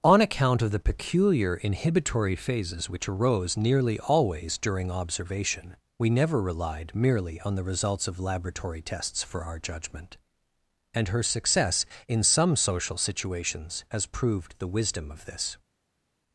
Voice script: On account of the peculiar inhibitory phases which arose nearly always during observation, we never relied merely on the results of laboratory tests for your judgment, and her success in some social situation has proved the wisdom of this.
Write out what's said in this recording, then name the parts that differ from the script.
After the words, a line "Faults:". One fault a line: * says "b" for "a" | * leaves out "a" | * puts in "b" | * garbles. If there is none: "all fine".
On account of the peculiar inhibitory phases which arose nearly always during observation, we never relied merely on the results of laboratory tests for our judgment, and her success in some social situations has proved the wisdom of this.
Faults:
* says "our" for "your"
* says "situations" for "situation"